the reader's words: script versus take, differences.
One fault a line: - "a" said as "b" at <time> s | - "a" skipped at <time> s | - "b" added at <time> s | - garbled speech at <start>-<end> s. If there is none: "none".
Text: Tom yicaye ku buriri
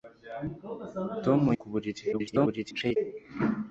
- "yicaye" skipped at 1.4 s
- garbled speech at 2.1-3.0 s